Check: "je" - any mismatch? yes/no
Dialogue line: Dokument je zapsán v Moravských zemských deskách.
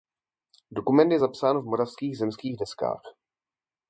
no